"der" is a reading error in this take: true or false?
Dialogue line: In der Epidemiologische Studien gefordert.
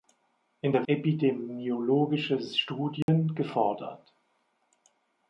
false